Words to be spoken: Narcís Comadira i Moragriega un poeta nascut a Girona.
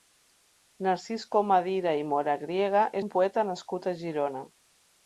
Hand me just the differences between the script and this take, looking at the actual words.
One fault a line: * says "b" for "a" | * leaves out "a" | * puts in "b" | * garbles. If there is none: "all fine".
all fine